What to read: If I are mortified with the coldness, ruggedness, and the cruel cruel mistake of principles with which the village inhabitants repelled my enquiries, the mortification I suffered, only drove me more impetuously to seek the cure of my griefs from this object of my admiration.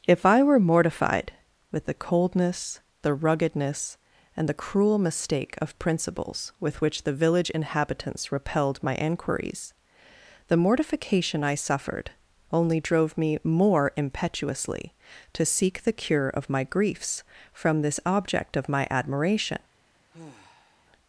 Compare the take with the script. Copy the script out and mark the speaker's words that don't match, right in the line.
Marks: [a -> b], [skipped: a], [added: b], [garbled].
If I [are -> were] mortified with the coldness, [added: the] ruggedness, and the cruel [skipped: cruel] mistake of principles with which the village inhabitants repelled my enquiries, the mortification I suffered, only drove me more impetuously to seek the cure of my griefs from this object of my admiration.